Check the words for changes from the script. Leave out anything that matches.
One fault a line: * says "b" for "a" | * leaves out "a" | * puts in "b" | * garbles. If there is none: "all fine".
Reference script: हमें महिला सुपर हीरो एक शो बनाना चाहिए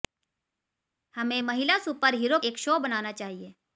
all fine